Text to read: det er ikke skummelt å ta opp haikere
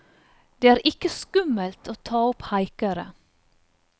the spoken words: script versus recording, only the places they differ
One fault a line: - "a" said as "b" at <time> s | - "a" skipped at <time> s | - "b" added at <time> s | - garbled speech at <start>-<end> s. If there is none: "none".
none